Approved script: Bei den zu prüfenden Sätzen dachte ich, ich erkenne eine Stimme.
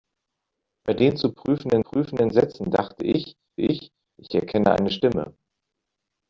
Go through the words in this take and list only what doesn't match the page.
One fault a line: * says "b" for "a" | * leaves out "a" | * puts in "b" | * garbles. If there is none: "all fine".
* puts in "prüfenden"
* puts in "ich"